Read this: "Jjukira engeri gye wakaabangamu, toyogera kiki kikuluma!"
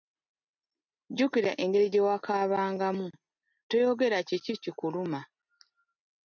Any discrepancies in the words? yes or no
no